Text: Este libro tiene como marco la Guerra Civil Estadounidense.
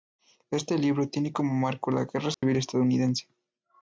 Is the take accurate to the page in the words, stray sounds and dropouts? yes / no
no